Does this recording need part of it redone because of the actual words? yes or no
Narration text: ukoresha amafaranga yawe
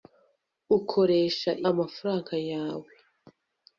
no